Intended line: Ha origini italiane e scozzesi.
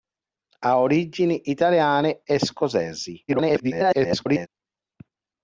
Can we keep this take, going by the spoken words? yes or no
no